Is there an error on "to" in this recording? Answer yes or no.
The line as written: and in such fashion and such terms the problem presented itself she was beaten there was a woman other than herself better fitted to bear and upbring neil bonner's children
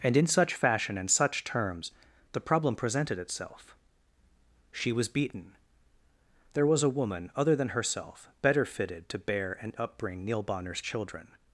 no